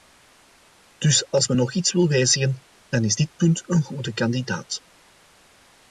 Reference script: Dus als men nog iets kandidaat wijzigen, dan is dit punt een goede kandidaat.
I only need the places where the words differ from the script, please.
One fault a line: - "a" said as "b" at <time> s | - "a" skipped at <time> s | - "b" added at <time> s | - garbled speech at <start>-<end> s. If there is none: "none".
- "kandidaat" said as "wil" at 1.9 s